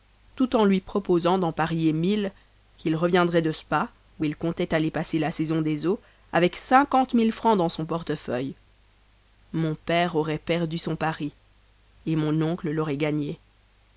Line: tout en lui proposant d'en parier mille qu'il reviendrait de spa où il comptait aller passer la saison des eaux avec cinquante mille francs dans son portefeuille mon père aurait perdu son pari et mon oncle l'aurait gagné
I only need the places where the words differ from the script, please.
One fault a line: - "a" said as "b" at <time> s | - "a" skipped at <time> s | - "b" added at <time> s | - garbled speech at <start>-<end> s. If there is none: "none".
none